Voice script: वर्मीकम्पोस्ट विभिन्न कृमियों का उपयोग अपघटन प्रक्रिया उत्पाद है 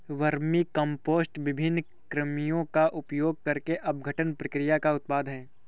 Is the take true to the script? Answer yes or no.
no